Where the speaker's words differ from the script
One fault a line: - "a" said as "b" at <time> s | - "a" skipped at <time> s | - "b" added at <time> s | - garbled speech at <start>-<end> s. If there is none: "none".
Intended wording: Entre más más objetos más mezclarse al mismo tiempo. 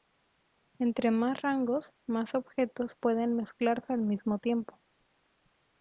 - "rangos" added at 1.4 s
- "más" said as "pueden" at 3.0 s